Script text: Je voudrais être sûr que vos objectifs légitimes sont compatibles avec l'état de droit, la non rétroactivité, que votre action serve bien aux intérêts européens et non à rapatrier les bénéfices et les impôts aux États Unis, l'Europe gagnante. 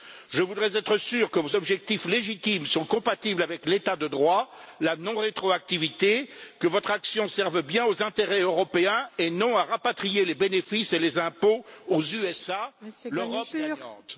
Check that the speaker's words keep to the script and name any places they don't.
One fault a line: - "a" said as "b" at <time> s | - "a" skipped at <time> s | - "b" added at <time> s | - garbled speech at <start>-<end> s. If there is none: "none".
none